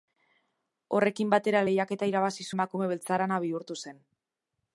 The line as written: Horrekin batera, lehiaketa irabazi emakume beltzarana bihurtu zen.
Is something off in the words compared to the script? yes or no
no